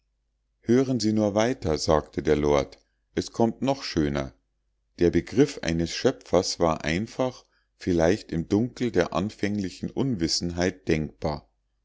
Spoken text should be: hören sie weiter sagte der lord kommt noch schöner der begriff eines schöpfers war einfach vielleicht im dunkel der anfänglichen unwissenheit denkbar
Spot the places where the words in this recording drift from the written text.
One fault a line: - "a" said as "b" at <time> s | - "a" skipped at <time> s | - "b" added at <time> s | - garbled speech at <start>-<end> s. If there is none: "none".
- "nur" added at 1.1 s
- "es" added at 3.2 s